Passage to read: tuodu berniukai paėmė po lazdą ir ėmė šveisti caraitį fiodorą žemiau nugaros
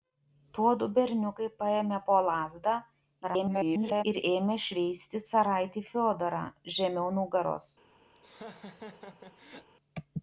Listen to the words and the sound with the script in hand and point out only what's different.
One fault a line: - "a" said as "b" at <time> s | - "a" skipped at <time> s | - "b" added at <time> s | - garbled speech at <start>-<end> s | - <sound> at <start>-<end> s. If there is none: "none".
- garbled speech at 3.2-4.0 s
- laugh at 8.2-9.7 s